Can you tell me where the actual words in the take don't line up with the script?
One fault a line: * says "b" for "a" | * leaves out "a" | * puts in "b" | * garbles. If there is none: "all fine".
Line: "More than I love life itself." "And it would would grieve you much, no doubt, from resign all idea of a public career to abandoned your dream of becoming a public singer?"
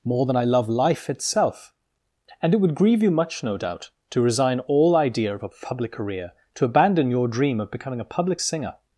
* leaves out "would"
* says "to" for "from"
* says "abandon" for "abandoned"